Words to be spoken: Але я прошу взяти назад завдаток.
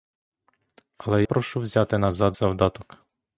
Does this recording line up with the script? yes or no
no